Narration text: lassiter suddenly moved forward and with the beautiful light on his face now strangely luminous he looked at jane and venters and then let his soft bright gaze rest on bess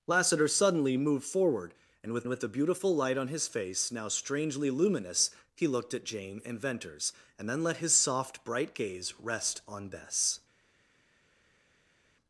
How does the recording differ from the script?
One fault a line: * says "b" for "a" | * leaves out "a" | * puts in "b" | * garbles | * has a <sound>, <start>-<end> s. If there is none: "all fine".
* puts in "with"